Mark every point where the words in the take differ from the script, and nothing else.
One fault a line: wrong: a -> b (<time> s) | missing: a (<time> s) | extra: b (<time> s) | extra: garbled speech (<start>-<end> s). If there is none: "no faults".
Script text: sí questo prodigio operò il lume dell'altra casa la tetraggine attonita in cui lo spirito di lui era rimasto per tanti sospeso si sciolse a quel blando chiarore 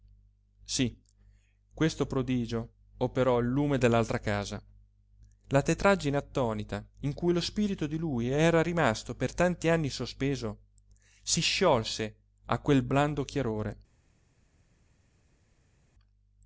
extra: anni (9.7 s)